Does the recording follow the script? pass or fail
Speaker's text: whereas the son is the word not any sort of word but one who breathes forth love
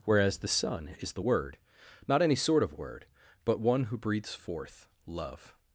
pass